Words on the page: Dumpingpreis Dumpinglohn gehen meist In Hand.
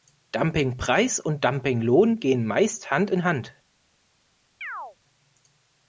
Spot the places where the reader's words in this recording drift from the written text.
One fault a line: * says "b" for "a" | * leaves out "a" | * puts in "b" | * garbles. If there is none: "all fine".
* puts in "und"
* puts in "Hand"